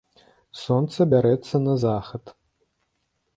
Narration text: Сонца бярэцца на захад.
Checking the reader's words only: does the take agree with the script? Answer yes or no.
yes